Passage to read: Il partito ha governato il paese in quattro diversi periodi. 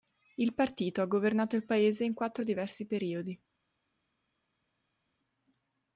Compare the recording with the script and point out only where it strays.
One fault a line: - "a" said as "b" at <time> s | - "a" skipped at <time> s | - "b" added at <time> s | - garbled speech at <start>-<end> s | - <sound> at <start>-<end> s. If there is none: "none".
none